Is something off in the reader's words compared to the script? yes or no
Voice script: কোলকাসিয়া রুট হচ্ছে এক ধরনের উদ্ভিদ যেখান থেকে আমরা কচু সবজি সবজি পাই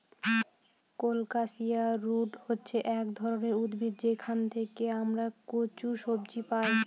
yes